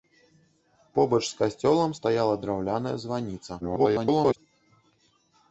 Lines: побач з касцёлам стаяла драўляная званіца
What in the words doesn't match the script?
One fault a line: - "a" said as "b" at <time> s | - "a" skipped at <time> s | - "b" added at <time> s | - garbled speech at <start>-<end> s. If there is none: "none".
- garbled speech at 3.6-4.4 s